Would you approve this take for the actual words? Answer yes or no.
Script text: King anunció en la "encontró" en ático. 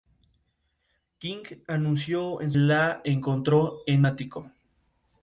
yes